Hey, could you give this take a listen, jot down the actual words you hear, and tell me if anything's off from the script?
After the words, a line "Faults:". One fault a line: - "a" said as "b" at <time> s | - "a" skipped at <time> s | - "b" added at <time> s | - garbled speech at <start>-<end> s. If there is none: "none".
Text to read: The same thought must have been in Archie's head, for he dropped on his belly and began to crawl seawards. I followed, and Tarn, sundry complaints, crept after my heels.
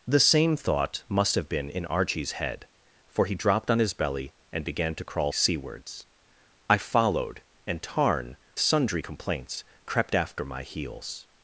The same thought must have been in Archie's head, for he dropped on his belly and began to crawl seawards. I followed, and Tarn, sundry complaints, crept after my heels.
Faults:
none